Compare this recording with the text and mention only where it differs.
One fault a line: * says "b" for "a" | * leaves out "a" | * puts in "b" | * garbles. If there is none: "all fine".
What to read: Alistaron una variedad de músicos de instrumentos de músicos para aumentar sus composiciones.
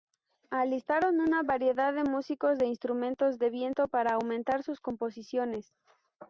* says "viento" for "músicos"